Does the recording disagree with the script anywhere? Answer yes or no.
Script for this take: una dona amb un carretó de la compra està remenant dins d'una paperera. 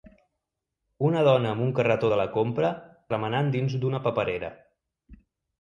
yes